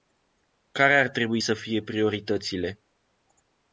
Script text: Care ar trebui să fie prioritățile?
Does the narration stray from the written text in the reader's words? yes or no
no